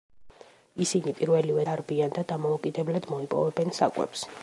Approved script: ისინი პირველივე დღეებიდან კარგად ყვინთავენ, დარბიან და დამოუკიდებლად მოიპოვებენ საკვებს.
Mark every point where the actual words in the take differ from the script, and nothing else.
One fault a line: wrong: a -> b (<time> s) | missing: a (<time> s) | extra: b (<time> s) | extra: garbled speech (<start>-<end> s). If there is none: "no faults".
missing: დღეებიდან კარგად ყვინთავენ (1.7 s)